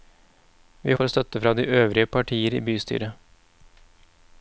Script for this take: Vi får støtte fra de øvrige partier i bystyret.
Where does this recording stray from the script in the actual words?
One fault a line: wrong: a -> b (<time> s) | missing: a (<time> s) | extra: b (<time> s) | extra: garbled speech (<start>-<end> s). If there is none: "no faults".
no faults